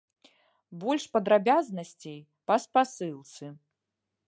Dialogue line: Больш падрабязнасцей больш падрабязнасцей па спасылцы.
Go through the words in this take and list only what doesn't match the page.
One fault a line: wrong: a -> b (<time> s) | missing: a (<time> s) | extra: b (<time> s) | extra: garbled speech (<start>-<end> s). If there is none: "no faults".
missing: больш падрабязнасцей (2.2 s)